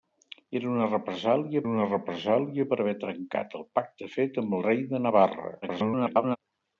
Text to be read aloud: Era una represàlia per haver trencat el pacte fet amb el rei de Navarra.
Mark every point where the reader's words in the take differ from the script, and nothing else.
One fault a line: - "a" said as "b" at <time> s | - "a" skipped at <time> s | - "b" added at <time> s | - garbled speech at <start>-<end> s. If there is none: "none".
- "una represàlia" added at 1.7 s
- garbled speech at 5.6-6.4 s